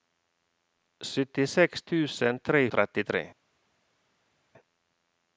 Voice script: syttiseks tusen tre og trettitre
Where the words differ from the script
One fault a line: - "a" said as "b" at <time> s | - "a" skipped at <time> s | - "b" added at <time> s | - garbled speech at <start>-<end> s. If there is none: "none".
none